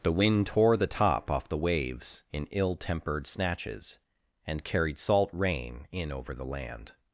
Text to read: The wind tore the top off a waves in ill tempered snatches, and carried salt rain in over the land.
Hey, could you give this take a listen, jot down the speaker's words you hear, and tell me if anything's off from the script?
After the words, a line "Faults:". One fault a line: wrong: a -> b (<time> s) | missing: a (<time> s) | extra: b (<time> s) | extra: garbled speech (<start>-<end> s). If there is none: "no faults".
The wind tore the top off the waves in ill tempered snatches, and carried salt rain in over the land.
Faults:
wrong: a -> the (1.5 s)